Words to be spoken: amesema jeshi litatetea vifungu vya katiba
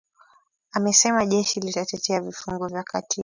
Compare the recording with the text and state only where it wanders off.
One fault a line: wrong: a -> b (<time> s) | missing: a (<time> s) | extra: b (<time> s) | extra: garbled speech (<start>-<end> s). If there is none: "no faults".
no faults